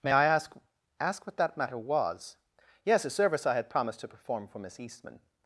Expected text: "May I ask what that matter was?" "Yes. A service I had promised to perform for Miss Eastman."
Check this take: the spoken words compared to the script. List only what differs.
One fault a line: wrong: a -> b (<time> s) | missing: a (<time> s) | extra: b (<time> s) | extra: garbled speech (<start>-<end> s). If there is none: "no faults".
extra: ask (1.0 s)